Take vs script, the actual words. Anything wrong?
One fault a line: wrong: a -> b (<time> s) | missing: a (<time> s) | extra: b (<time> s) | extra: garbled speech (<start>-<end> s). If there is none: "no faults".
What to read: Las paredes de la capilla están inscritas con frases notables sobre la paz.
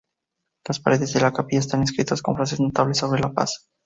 no faults